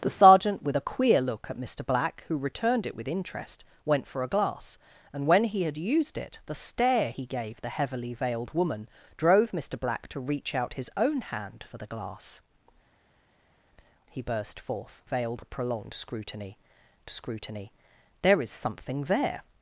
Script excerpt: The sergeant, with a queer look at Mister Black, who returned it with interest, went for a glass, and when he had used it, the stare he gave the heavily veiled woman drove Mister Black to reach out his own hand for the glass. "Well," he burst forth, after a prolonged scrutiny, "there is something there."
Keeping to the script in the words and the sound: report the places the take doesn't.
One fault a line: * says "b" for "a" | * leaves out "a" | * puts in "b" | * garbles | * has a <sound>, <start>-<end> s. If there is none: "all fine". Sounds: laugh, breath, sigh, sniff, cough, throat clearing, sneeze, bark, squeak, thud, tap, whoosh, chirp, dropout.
* leaves out "Well"
* says "veiled" for "after"
* puts in "scrutiny"